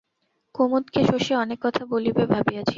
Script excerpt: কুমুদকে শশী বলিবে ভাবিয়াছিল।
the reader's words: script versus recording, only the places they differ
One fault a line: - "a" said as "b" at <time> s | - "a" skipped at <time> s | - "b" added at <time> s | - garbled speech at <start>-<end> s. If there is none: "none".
- "অনেক কথা" added at 1.4 s